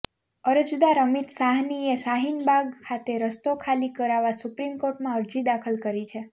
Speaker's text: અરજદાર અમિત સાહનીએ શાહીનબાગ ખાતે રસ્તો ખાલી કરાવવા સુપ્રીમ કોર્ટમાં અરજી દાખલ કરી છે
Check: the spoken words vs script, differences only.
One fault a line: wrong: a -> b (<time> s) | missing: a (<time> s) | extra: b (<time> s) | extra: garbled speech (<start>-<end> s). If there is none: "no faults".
no faults